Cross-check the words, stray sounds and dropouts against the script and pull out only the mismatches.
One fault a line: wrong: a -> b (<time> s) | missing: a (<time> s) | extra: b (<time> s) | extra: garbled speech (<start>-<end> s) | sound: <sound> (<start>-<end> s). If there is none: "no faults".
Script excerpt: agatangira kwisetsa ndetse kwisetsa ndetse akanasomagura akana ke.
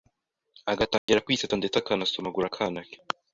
sound: dropout (1.0-1.1 s)
missing: kwisetsa ndetse (1.8 s)